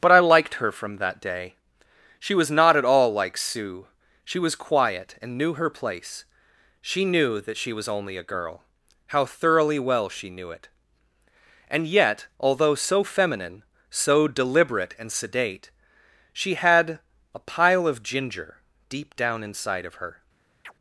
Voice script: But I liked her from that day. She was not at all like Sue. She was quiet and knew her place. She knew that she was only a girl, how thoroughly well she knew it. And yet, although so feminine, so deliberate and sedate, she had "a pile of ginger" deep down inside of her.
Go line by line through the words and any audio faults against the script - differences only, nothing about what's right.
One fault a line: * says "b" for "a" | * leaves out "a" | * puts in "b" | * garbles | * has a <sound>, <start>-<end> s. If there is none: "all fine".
* has a chirp, 20.6-20.7 s